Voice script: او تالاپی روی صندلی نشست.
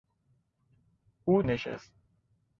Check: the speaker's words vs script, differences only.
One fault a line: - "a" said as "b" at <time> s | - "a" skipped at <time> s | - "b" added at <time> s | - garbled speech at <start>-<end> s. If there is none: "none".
- "تالاپی روی صندلی" skipped at 1.4 s